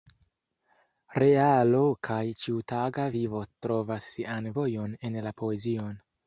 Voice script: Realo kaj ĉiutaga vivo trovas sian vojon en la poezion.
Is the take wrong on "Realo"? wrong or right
right